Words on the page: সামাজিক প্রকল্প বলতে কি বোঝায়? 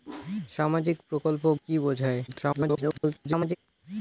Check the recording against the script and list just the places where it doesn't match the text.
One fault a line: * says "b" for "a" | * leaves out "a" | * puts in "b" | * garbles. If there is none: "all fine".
* leaves out "বলতে"
* garbles